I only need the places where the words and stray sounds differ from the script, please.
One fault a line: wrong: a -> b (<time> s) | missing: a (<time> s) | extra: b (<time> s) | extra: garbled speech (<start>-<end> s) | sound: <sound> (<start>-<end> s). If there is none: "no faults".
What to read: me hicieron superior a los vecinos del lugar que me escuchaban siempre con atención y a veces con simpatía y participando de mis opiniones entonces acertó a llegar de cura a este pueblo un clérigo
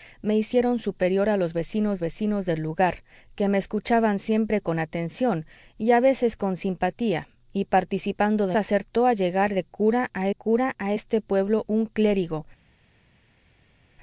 extra: vecinos (2.0 s)
missing: mis opiniones entonces (8.5 s)
extra: cura a (10.3 s)